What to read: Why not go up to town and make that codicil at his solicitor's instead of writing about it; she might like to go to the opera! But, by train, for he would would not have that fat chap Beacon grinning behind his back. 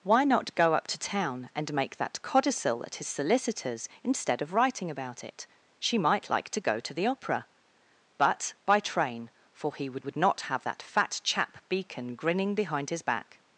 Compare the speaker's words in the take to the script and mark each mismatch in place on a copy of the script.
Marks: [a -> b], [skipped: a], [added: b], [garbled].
Why not go up to town and make that codicil at his solicitor's instead of writing about it; she might like to go to the opera! But, by train, for he would would not have that fat chap Beacon grinning behind his back.